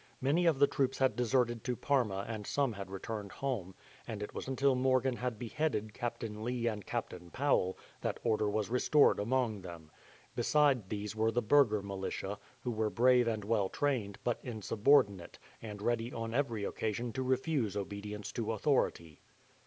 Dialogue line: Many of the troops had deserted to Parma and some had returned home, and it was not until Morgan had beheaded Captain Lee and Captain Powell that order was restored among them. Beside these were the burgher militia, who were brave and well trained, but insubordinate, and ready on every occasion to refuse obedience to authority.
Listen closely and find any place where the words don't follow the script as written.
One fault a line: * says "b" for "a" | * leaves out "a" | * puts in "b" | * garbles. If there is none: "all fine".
* leaves out "not"